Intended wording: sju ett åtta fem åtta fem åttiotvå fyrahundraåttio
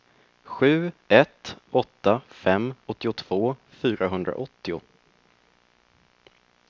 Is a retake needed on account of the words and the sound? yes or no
yes